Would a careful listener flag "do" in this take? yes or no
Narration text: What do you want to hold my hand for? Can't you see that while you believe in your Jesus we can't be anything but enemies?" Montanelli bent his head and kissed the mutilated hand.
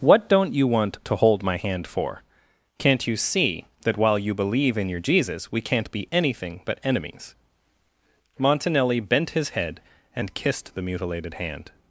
yes